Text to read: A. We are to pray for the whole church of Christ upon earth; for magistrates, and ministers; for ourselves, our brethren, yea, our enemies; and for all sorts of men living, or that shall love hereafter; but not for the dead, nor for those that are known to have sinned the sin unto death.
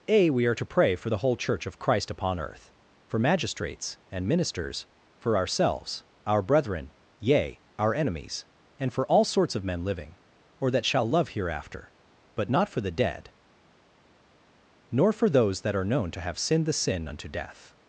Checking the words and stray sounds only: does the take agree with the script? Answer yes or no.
yes